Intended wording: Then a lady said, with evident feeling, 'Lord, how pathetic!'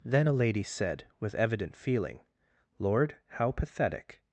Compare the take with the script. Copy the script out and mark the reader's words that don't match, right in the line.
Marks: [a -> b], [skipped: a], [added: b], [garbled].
Then a lady said, with evident feeling, 'Lord, how pathetic!'